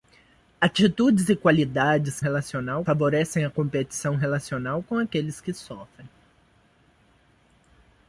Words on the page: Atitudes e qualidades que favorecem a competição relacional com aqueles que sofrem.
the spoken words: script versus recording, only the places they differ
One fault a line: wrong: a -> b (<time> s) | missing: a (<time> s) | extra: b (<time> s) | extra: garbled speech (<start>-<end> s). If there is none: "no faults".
wrong: que -> relacional (2.2 s)